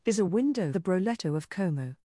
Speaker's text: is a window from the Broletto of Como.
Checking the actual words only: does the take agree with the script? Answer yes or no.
no